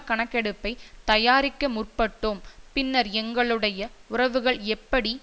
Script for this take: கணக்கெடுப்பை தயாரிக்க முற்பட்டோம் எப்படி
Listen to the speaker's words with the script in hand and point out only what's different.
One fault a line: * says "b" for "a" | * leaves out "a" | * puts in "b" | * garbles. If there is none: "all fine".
* puts in "பின்னர் எங்களுடைய உறவுகள்"